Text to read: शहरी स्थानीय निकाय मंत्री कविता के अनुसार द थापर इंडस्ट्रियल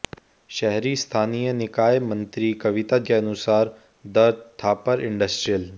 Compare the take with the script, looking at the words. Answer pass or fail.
pass